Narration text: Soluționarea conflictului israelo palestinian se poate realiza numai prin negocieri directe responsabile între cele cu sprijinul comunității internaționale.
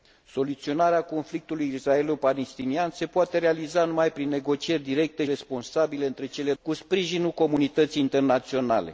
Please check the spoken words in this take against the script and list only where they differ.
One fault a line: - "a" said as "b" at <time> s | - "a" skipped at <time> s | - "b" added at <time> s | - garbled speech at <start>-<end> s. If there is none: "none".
none